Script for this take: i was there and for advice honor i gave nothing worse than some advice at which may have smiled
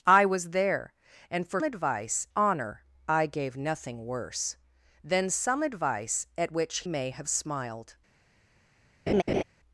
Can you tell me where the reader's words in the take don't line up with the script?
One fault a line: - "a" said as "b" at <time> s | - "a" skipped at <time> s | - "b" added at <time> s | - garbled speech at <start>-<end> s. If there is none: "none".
none